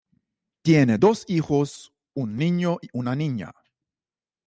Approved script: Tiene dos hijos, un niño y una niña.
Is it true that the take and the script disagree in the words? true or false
false